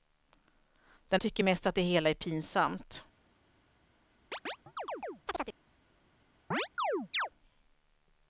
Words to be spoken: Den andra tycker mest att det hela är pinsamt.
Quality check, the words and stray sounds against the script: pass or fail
fail